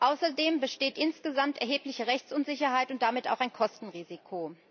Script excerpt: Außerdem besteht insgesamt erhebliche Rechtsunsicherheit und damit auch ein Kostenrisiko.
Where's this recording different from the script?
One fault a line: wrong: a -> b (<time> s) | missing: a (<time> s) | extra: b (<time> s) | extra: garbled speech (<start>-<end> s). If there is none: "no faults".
no faults